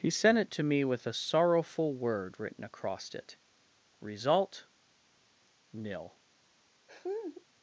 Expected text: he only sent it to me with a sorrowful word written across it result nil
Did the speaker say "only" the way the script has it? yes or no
no